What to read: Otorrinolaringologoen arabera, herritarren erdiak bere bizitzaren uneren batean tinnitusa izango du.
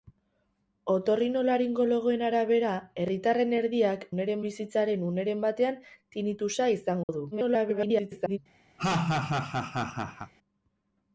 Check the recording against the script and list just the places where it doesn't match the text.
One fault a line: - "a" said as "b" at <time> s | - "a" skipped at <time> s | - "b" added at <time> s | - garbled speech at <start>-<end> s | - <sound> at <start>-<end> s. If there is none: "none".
- "bere" said as "uneren" at 4.1 s
- dropout at 7.0-7.1 s
- garbled speech at 7.3-8.4 s
- laugh at 8.8-10.3 s